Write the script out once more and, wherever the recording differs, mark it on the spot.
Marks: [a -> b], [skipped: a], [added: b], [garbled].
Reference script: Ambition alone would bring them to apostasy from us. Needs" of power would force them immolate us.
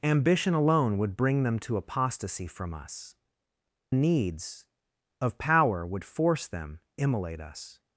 Ambition alone would bring them to apostasy from us. Needs" of power would force them immolate us.